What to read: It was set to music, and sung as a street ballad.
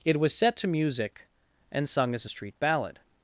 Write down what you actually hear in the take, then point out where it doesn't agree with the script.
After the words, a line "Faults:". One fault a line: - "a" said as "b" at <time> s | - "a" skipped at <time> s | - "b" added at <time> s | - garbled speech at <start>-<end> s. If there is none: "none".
It was set to music, and sung as a street ballad.
Faults:
none